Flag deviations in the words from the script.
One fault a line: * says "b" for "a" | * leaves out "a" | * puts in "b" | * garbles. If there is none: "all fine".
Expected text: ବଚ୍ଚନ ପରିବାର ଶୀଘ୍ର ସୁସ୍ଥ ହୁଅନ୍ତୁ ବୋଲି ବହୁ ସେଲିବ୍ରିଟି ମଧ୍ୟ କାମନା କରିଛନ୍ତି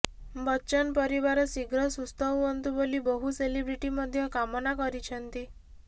all fine